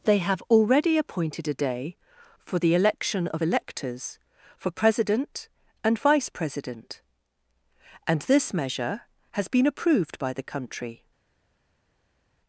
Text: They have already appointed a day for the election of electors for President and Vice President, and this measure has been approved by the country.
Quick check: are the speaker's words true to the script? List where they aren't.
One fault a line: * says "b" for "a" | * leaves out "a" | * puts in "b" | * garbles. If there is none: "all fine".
all fine